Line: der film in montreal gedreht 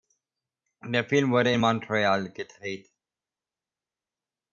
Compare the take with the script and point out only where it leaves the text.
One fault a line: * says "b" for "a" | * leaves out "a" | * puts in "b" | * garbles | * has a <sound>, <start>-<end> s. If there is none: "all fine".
* puts in "wurde"